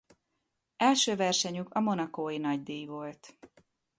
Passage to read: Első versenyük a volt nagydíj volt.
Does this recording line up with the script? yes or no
no